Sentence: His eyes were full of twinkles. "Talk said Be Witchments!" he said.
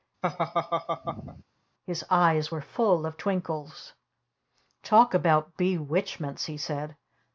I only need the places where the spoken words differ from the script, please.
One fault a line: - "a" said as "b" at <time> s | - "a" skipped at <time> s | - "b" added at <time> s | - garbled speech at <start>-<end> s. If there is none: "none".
- "said" said as "about" at 5.2 s